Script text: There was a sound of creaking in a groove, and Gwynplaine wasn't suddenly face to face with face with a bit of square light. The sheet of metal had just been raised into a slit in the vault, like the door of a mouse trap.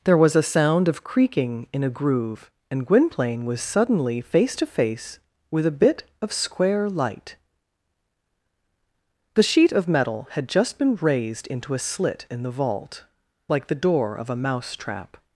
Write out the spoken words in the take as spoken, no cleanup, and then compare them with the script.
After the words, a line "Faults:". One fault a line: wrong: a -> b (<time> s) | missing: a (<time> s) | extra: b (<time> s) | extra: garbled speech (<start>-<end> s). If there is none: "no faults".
There was a sound of creaking in a groove, and Gwynplaine was suddenly face to face with a bit of square light. The sheet of metal had just been raised into a slit in the vault, like the door of a mouse trap.
Faults:
wrong: wasn't -> was (3.5 s)
missing: face with (5.7 s)